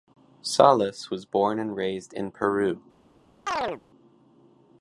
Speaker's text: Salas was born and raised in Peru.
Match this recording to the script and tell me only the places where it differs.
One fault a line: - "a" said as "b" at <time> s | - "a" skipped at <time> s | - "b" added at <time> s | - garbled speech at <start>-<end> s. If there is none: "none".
none